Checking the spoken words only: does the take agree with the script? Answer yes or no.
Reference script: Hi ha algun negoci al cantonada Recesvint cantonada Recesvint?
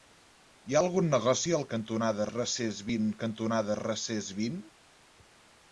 yes